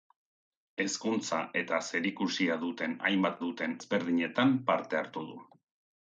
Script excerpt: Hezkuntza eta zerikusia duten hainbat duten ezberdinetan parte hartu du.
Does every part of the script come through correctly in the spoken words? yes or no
yes